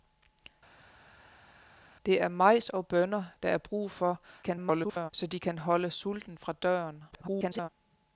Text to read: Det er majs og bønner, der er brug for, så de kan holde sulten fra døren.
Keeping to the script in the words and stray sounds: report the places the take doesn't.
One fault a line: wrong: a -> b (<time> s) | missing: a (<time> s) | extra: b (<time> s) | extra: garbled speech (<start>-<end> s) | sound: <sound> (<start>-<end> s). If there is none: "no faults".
extra: garbled speech (4.4-5.1 s)
extra: garbled speech (7.1-7.7 s)